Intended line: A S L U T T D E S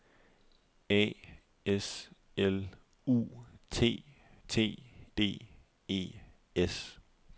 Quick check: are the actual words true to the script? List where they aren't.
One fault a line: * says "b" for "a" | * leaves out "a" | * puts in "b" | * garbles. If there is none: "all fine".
all fine